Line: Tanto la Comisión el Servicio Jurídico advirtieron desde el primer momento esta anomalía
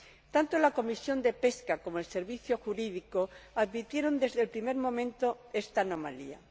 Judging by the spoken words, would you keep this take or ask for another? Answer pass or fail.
fail